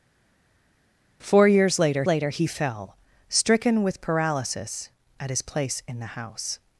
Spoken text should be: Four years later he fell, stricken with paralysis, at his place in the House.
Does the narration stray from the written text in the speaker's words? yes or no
yes